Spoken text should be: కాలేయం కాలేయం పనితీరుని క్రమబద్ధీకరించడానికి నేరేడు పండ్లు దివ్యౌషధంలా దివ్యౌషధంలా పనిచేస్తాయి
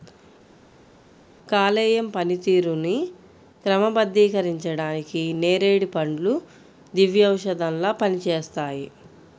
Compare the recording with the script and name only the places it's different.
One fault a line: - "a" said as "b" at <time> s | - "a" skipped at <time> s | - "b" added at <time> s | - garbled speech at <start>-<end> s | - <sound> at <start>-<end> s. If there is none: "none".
- "కాలేయం" skipped at 2.1 s
- "దివ్యౌషధంలా" skipped at 7.9 s